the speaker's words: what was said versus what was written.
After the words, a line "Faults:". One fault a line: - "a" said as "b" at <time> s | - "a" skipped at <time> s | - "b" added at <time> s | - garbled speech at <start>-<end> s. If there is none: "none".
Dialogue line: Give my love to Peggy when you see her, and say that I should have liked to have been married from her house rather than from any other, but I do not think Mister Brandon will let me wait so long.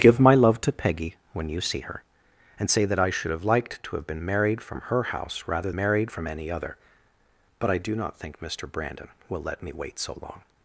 Give my love to Peggy when you see her, and say that I should have liked to have been married from her house rather married from any other, but I do not think Mister Brandon will let me wait so long.
Faults:
- "than" said as "married" at 5.7 s